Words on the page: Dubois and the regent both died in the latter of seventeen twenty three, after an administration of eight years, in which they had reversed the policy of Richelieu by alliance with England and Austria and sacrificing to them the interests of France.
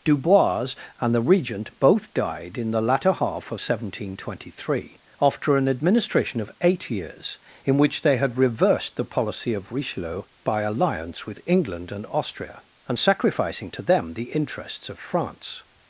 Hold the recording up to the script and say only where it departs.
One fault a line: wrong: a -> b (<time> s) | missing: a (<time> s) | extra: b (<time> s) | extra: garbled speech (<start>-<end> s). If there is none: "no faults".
extra: half (3.1 s)